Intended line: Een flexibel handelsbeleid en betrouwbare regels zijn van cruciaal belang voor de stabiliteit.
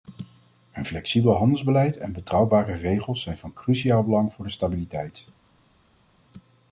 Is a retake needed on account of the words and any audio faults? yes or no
no